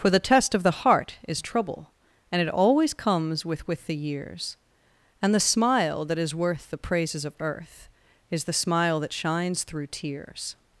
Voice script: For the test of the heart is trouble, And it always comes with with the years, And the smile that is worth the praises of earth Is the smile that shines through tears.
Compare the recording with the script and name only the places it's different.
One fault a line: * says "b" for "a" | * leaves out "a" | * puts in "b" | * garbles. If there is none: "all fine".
all fine